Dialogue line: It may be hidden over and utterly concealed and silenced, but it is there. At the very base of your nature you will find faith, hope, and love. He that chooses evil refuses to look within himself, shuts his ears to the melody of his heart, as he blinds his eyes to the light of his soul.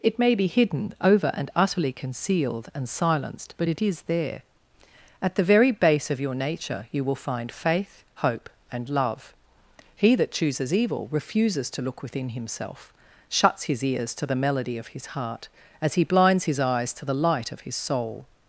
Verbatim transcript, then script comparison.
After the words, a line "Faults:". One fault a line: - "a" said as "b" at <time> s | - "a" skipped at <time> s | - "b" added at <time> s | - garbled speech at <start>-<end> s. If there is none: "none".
It may be hidden over and utterly concealed and silenced, but it is there. At the very base of your nature you will find faith, hope, and love. He that chooses evil refuses to look within himself, shuts his ears to the melody of his heart, as he blinds his eyes to the light of his soul.
Faults:
none